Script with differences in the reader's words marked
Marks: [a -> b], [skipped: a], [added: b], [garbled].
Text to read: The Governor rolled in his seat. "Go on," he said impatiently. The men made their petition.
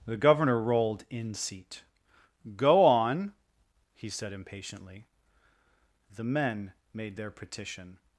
The Governor rolled in [skipped: his] seat. "Go on," he said impatiently. The men made their petition.